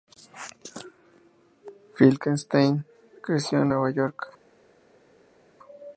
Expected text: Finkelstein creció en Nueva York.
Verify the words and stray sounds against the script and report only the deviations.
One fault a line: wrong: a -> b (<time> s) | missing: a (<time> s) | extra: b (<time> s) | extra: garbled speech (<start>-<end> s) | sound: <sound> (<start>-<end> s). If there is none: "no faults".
no faults